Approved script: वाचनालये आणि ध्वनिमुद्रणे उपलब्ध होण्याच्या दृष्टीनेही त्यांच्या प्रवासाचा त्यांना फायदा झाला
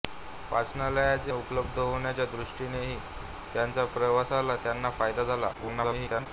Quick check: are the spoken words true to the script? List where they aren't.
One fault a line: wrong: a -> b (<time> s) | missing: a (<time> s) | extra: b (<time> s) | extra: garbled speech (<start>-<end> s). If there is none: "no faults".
missing: आणि ध्वनिमुद्रणे (1.3 s)
extra: garbled speech (5.5-6.3 s)